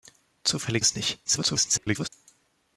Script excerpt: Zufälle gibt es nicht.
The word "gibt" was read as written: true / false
false